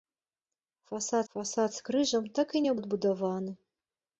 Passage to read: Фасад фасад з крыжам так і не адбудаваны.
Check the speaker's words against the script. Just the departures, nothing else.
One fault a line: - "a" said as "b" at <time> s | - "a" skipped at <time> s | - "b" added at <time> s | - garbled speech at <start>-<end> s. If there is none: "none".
none